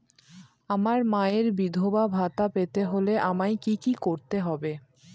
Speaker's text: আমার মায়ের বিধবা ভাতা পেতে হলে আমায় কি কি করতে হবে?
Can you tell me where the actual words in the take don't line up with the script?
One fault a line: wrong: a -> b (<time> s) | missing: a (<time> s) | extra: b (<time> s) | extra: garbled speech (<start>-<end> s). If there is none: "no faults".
no faults